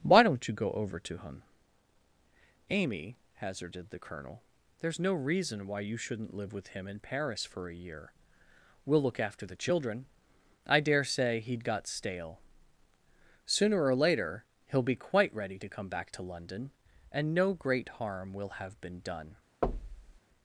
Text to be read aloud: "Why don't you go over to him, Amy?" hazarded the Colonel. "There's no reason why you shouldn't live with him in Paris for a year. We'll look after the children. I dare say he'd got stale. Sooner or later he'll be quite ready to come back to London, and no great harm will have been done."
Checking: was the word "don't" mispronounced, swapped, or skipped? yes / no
no